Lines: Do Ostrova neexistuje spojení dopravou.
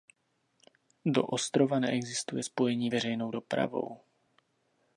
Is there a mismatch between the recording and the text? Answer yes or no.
yes